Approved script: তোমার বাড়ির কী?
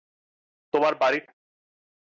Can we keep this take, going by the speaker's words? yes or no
yes